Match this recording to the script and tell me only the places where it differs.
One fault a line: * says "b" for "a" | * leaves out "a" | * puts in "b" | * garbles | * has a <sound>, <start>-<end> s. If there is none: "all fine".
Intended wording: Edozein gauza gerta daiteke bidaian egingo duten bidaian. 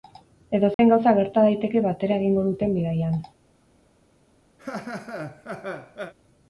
* has a dropout, 0.7-0.8 s
* says "batera" for "bidaian"
* has a laugh, 4.6-6.1 s